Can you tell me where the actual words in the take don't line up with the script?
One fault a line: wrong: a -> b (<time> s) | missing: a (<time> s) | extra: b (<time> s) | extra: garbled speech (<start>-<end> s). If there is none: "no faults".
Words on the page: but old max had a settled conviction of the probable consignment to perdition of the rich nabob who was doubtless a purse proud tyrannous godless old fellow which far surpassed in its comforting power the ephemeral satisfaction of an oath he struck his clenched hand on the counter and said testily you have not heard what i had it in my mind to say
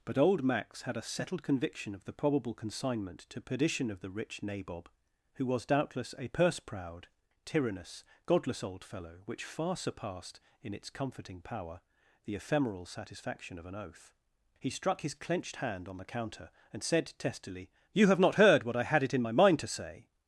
no faults